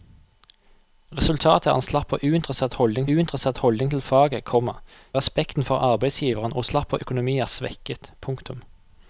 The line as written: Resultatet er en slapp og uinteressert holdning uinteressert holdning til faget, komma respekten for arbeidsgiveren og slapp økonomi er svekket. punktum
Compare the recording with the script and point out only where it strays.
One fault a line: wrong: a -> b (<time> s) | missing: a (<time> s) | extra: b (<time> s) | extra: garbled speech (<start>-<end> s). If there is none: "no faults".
no faults